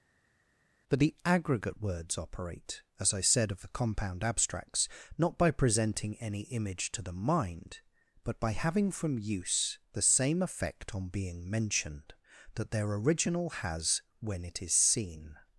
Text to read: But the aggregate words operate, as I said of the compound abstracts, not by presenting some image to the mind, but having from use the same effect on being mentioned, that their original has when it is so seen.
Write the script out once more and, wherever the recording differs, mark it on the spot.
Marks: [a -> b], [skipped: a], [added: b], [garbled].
But the aggregate words operate, as I said of the compound abstracts, not by presenting [some -> any] image to the mind, but [added: by] having from use the same effect on being mentioned, that their original has when it is [skipped: so] seen.